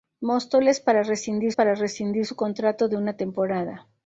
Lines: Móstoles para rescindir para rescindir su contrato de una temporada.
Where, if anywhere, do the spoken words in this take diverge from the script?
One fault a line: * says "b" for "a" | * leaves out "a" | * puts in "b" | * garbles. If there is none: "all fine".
all fine